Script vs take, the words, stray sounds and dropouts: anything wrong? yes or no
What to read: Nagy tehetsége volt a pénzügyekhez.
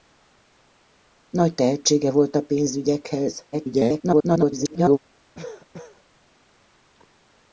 yes